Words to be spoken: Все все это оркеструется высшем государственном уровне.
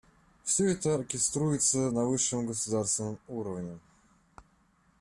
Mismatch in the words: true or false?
true